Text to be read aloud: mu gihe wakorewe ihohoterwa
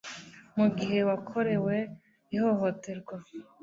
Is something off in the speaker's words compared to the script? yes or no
no